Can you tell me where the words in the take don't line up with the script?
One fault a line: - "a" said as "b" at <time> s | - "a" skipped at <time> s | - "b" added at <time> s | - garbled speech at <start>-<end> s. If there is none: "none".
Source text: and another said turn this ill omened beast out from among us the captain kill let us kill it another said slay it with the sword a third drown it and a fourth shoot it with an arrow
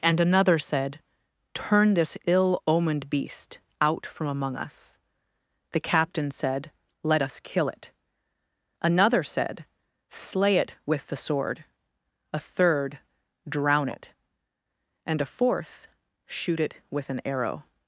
- "kill" said as "said" at 6.3 s